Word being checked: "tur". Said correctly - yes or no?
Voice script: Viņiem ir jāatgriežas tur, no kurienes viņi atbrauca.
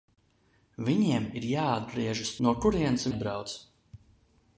no